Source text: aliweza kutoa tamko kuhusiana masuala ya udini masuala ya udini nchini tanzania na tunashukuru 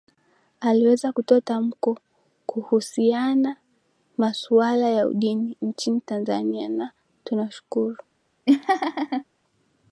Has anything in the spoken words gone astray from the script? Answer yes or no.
yes